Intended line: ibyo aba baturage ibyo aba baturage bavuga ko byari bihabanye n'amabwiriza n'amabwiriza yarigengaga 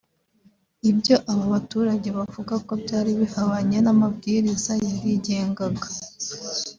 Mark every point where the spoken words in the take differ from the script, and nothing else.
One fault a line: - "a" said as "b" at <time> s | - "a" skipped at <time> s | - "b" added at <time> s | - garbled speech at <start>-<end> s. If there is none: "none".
- "ibyo aba baturage" skipped at 2.1 s
- "n'amabwiriza" skipped at 4.7 s